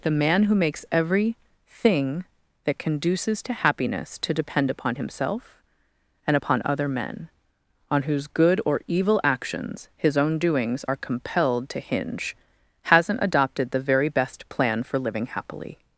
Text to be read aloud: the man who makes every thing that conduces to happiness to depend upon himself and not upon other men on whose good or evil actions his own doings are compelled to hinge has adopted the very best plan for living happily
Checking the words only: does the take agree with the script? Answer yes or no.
no